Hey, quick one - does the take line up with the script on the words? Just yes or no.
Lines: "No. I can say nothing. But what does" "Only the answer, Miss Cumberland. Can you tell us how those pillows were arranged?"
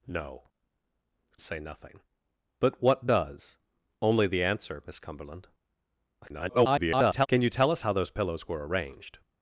no